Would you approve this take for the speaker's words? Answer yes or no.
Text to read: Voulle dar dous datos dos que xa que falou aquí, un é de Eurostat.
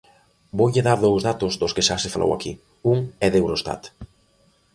no